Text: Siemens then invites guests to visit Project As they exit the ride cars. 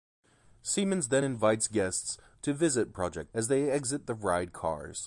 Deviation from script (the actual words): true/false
false